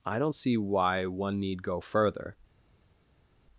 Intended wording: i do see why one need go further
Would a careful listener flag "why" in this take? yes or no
no